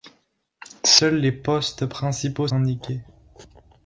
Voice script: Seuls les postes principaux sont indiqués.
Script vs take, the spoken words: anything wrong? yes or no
yes